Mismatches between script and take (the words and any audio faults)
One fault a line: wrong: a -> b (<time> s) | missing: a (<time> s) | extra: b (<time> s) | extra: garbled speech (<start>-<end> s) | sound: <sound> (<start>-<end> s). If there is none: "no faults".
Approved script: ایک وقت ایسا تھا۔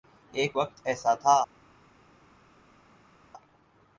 no faults